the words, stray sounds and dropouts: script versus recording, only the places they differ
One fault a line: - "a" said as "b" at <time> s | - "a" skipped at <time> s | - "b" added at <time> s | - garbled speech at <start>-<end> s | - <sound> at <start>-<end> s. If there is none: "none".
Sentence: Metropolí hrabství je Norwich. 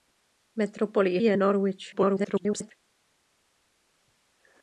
- "hrabství" skipped at 1.2 s
- garbled speech at 1.9-2.7 s